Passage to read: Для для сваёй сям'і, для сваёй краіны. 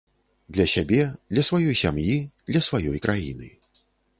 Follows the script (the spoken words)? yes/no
no